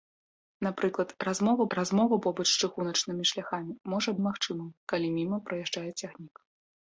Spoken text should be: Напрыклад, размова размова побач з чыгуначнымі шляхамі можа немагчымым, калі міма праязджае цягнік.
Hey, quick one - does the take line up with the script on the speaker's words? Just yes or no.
yes